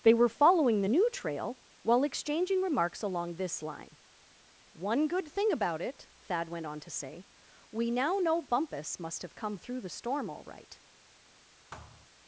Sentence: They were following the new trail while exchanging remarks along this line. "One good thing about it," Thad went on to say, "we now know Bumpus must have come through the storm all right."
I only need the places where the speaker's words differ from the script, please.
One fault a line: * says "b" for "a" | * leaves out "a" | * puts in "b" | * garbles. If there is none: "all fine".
all fine